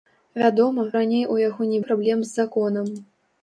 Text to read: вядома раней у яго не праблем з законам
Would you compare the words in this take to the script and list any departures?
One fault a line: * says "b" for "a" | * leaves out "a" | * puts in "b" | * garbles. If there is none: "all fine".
all fine